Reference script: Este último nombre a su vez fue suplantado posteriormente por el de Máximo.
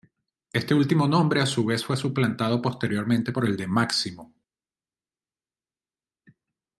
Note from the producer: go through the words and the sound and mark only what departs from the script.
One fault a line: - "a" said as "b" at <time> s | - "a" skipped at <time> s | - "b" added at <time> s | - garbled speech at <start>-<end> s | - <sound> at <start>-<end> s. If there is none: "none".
none